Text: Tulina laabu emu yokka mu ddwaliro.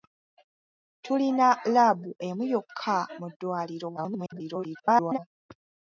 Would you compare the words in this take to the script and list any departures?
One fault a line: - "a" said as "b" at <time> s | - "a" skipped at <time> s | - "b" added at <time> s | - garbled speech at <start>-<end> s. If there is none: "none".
- garbled speech at 4.0-5.2 s